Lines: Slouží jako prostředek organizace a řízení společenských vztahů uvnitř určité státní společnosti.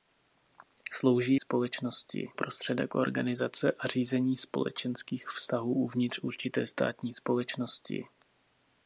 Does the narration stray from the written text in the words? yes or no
yes